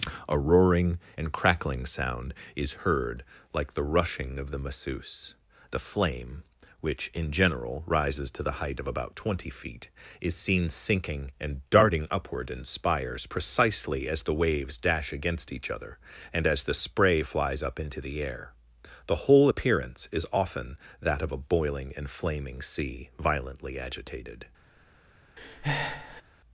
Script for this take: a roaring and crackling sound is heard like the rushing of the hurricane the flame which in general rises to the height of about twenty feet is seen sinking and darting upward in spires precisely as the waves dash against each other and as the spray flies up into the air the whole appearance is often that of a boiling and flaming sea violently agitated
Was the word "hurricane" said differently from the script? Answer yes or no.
yes